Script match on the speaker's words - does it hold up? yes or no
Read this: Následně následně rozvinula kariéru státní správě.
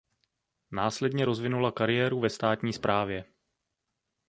no